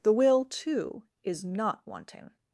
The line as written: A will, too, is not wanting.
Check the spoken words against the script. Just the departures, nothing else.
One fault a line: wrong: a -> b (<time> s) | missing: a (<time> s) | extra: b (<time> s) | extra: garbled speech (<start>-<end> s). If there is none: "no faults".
wrong: A -> The (0.0 s)